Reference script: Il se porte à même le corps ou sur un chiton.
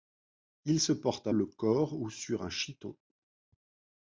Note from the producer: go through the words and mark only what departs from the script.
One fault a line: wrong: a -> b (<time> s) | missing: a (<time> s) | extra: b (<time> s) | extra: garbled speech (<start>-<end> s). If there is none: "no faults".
missing: même (1.3 s)